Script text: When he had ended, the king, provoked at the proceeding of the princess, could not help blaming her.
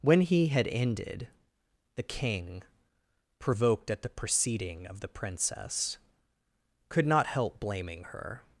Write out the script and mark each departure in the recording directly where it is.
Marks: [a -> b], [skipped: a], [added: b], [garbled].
When he had ended, the king, provoked at the proceeding of the princess, could not help blaming her.